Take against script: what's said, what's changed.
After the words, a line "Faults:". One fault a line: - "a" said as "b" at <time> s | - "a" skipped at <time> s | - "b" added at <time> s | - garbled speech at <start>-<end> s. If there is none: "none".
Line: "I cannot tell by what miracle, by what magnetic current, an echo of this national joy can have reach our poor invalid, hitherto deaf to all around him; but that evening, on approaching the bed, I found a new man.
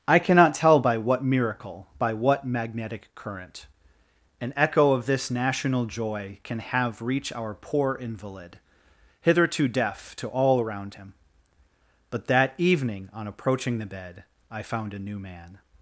"I cannot tell by what miracle, by what magnetic current, an echo of this national joy can have reach our poor invalid, hitherto deaf to all around him; but that evening, on approaching the bed, I found a new man.
Faults:
none